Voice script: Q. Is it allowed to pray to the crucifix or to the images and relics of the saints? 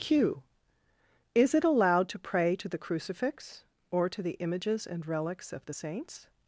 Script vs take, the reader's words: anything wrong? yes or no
no